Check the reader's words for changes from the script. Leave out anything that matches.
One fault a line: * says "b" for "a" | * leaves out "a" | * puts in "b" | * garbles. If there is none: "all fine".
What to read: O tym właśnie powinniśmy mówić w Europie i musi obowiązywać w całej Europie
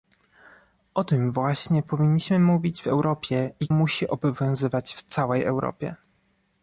all fine